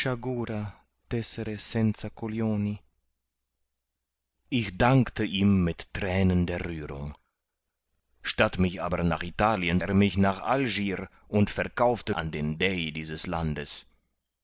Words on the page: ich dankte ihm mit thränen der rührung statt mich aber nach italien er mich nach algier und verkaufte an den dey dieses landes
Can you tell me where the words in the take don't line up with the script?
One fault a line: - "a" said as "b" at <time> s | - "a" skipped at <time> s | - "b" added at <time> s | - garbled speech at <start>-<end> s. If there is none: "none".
none